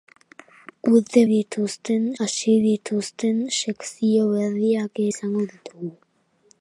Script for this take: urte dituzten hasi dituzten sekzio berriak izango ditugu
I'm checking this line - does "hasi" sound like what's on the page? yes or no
yes